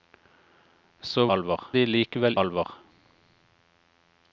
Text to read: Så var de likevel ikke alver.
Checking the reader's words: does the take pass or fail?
fail